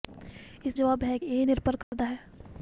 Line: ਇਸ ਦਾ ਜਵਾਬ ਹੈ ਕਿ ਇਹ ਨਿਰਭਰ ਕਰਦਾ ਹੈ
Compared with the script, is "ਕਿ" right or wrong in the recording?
wrong